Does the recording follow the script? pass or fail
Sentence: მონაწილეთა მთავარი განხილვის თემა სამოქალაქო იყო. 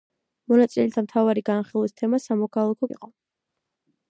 pass